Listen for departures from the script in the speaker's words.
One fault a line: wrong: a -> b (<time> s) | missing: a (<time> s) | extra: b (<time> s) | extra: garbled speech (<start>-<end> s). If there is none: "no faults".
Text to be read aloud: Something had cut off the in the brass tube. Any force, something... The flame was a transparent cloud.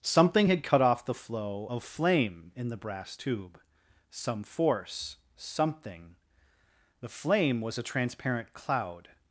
extra: flow of flame (1.1 s)
wrong: Any -> Some (4.1 s)